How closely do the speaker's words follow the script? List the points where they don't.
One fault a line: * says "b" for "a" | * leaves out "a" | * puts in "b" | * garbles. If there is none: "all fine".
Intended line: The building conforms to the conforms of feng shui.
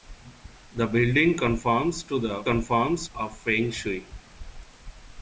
all fine